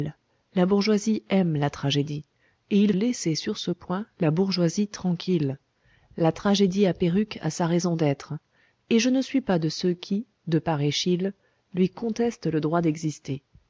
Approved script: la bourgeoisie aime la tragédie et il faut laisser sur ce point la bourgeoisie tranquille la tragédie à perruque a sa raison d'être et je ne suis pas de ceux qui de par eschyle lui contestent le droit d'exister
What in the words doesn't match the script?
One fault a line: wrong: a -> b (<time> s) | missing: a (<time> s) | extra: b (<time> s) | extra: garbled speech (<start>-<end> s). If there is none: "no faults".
missing: faut (2.9 s)